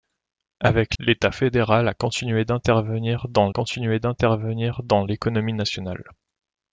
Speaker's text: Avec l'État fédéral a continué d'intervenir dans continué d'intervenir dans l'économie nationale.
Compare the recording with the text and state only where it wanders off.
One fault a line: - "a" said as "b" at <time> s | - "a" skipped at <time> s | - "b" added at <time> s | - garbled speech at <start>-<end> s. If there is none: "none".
none